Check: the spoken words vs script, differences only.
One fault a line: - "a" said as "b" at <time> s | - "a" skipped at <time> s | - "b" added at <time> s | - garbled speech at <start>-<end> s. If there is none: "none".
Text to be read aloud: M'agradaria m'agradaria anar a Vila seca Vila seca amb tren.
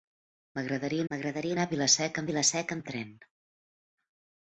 none